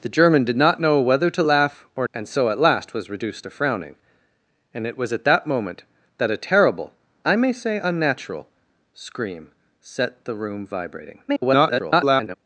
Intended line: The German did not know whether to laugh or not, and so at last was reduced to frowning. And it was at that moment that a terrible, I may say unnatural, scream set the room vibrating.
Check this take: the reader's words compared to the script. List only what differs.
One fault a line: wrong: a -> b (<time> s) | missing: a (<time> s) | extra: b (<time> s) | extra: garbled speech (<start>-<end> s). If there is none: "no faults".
missing: not (2.1 s)
extra: garbled speech (11.3-12.4 s)